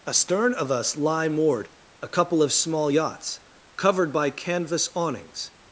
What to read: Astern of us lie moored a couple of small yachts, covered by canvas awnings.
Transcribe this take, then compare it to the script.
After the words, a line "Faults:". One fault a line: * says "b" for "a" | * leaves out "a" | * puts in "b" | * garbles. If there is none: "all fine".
Astern of us lie moored a couple of small yachts, covered by canvas awnings.
Faults:
all fine